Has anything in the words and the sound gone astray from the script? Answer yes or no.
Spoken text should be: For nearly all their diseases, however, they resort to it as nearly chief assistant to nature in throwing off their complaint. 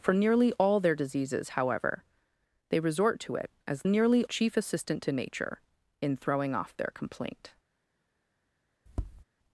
yes